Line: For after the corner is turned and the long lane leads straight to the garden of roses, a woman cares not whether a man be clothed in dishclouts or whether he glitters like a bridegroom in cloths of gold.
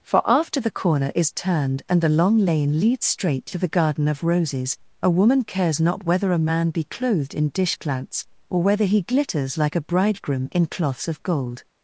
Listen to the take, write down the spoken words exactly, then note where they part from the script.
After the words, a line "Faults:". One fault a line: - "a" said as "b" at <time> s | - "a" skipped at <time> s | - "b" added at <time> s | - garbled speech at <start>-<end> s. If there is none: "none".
For after the corner is turned and the long lane leads straight to the garden of roses, a woman cares not whether a man be clothed in dishclouts or whether he glitters like a bridegroom in cloths of gold.
Faults:
none